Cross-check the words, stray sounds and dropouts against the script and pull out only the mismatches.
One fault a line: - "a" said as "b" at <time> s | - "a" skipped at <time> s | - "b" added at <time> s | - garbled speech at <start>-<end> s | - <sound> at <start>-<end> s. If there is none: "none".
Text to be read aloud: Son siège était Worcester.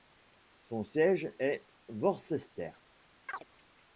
- "était" said as "est" at 1.4 s
- chirp at 3.3-3.4 s